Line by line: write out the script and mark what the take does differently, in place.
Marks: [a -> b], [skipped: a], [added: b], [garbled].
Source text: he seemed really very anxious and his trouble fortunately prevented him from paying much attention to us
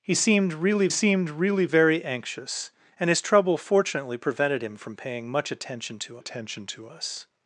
he seemed really [added: seemed really] very anxious and his trouble fortunately prevented him from paying much attention to [added: attention to] us